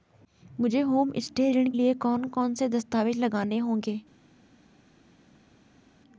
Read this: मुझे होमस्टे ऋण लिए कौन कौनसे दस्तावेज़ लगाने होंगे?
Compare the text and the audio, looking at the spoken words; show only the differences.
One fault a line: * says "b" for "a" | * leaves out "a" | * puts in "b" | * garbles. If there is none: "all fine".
all fine